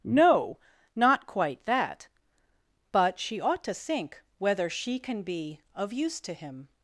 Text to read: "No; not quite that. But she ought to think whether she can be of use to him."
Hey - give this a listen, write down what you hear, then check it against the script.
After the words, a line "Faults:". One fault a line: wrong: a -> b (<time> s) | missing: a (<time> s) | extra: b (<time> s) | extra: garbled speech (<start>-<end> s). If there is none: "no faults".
"No; not quite that. But she ought to think whether she can be of use to him."
Faults:
no faults